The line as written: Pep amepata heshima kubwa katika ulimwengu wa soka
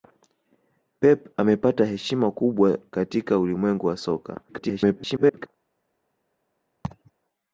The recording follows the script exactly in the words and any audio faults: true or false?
false